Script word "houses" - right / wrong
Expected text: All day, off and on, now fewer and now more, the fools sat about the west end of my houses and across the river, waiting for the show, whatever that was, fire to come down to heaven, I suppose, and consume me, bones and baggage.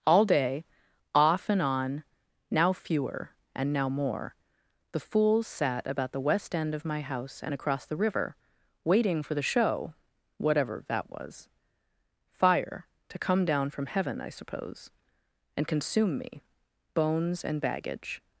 wrong